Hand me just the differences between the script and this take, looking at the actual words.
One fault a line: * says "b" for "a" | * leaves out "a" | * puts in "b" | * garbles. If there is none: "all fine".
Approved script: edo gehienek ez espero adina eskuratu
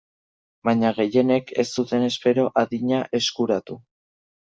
* says "baina" for "edo"
* puts in "zuten"